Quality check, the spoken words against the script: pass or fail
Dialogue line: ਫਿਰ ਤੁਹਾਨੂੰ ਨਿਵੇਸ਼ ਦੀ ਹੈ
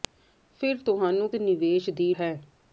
pass